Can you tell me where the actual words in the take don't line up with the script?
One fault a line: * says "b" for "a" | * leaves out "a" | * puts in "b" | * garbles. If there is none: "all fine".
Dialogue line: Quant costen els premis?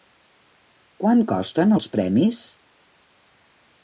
all fine